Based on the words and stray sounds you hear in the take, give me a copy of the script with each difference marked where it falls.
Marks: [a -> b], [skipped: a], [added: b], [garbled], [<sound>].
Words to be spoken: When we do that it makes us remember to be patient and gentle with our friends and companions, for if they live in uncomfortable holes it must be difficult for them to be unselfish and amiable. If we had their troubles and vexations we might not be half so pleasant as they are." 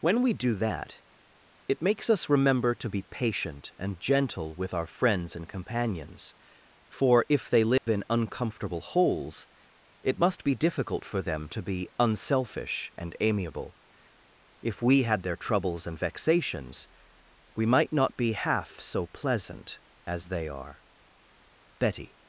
When we do that it makes us remember to be patient and gentle with our friends and companions, for if they live [dropout] in uncomfortable holes it must be difficult for them to be unselfish and amiable. If we had their troubles and vexations we might not be half so pleasant as they are." [added: Betty]